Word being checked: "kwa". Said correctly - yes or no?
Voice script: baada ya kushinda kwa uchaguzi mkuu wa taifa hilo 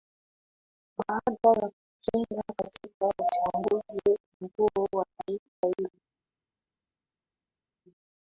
no